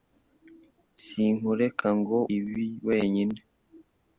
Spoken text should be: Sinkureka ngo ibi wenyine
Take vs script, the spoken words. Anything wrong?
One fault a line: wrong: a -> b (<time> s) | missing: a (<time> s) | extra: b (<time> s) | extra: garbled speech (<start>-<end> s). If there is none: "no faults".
no faults